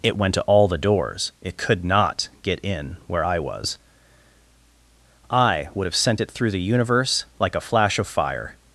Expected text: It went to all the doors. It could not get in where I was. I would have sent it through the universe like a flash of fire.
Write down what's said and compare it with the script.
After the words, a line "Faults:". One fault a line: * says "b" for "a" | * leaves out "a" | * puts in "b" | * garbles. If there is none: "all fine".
It went to all the doors. It could not get in where I was. I would have sent it through the universe like a flash of fire.
Faults:
all fine